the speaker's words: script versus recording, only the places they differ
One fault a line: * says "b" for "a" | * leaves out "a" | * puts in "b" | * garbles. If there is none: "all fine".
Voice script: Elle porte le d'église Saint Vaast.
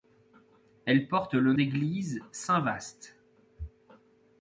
all fine